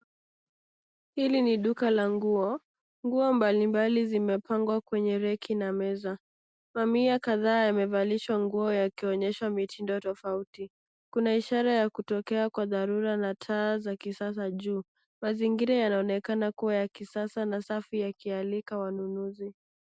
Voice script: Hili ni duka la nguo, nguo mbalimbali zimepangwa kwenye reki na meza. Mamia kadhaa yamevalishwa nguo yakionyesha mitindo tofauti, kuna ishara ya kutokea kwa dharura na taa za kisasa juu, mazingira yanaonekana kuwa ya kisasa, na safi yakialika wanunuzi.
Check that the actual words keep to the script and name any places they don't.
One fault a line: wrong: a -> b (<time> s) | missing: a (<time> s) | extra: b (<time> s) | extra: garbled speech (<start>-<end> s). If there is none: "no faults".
no faults